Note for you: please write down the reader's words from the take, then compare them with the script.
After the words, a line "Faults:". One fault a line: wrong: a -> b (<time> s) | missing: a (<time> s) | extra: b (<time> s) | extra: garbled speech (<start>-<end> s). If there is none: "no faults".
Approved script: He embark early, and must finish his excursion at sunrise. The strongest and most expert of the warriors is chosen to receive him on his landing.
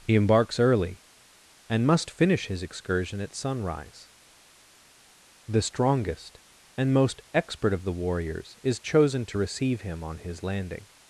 He embarks early, and must finish his excursion at sunrise. The strongest and most expert of the warriors is chosen to receive him on his landing.
Faults:
wrong: embark -> embarks (0.1 s)